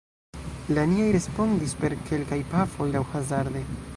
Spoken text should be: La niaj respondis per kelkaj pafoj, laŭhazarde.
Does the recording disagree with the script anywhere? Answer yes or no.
no